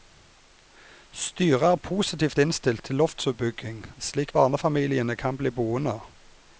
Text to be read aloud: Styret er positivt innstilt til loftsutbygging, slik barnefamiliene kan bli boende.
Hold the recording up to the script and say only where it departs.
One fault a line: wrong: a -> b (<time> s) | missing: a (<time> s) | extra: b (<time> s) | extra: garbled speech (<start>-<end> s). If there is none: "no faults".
no faults